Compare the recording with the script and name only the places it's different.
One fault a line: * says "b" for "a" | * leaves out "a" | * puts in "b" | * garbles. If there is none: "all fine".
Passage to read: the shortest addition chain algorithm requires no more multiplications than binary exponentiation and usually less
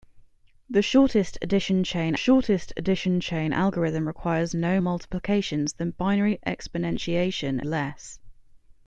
* puts in "shortest addition chain"
* leaves out "more"
* leaves out "and usually"